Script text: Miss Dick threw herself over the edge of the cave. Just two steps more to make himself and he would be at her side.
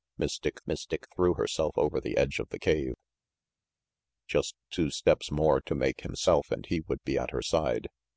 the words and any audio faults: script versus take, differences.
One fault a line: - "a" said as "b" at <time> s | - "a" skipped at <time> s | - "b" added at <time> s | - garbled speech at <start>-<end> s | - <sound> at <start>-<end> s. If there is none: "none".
- "miss Dick" added at 0.7 s